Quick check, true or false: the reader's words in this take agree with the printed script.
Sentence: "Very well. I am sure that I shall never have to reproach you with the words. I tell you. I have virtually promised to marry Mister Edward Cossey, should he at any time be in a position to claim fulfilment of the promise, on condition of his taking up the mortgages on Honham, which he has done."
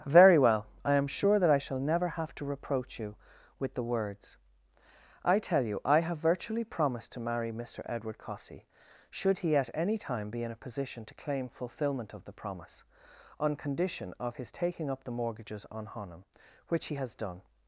true